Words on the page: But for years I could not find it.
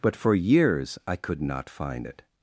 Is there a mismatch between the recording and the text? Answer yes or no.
no